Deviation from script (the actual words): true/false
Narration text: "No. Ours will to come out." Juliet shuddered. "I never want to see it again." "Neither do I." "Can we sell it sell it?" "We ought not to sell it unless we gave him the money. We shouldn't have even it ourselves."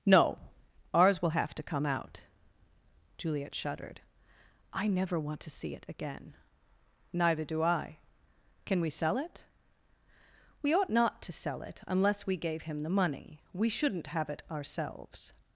true